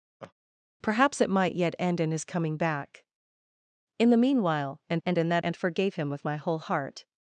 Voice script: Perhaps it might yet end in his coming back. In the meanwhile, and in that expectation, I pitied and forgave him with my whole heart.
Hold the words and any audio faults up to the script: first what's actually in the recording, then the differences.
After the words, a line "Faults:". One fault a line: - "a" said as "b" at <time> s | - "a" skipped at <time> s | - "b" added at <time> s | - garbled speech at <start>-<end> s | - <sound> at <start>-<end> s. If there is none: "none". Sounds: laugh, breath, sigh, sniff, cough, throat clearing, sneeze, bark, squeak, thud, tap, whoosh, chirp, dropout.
Perhaps it might yet end in his coming back. In the meanwhile, and and in that and forgave him with my whole heart.
Faults:
- laugh at 0.2-0.3 s
- "and" added at 5.1 s
- "expectation I pitied" skipped at 5.4 s